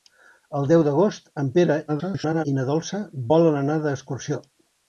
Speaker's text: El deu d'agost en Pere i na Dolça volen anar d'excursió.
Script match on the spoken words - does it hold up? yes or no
no